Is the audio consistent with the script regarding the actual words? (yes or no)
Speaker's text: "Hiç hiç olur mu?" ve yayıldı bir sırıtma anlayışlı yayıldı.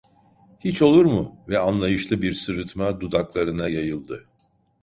no